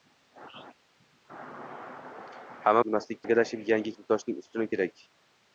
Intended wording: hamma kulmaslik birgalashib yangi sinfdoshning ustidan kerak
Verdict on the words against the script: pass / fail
pass